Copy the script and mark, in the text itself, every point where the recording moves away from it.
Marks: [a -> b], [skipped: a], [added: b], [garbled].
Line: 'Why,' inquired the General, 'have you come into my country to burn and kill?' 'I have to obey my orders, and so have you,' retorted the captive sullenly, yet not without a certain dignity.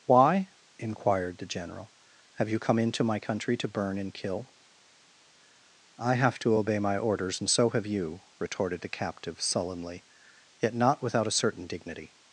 'Why,' inquired the General, 'have you come into my country to burn and kill?' 'I have to obey my orders, and so have you,' retorted the captive sullenly, yet not without a certain dignity.